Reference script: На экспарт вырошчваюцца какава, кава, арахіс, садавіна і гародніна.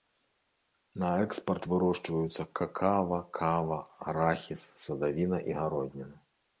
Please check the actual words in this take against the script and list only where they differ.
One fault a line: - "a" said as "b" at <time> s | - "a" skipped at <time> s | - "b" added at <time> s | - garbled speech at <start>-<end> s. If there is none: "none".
none